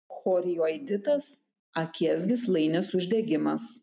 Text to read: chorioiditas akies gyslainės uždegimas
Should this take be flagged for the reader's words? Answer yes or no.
no